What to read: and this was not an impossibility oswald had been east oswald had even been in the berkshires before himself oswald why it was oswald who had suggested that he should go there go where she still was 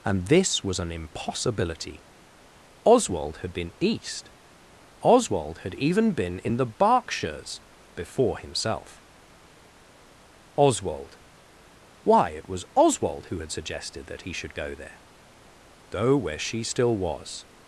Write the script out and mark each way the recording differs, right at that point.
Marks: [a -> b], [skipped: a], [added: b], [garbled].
and this was [skipped: not] an impossibility oswald had been east oswald had even been in the berkshires before himself oswald why it was oswald who had suggested that he should go there go where she still was